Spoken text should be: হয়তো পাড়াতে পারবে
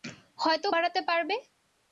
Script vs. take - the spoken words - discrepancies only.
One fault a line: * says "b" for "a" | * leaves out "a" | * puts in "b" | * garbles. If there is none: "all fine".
all fine